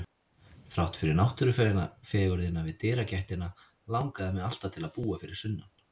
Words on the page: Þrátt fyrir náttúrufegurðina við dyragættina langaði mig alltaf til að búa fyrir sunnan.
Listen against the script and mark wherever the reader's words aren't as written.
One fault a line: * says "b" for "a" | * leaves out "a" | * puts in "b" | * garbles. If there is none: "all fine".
all fine